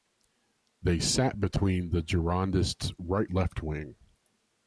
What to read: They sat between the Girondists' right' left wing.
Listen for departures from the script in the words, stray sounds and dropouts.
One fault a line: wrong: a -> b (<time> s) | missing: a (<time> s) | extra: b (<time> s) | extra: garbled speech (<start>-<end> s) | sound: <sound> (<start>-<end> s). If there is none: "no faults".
no faults